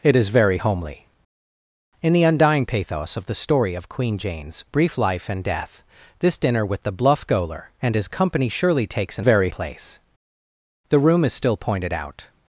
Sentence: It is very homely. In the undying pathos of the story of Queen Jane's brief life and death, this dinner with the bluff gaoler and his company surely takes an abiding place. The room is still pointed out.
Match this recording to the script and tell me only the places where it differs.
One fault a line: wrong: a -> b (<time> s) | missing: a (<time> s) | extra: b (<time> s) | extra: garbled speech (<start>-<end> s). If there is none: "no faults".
wrong: abiding -> very (9.2 s)